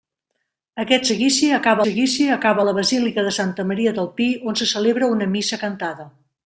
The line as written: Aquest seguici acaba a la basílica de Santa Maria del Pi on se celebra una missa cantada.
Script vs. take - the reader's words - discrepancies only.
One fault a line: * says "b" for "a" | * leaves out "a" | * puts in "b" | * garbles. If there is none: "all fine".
* puts in "seguici acaba"